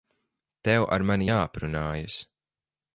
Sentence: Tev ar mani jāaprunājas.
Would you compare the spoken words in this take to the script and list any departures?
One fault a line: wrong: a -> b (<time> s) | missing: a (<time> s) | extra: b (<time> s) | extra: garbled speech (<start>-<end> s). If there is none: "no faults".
no faults